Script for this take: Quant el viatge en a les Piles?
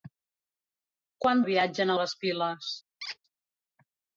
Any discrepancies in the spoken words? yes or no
no